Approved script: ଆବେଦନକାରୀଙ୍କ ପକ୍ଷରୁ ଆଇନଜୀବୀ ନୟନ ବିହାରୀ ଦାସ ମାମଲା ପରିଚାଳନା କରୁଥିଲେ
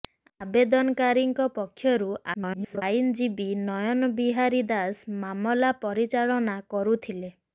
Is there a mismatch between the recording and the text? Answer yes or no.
yes